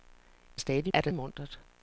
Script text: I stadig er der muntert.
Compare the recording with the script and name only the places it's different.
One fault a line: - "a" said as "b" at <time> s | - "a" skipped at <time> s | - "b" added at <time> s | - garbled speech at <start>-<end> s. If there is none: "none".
none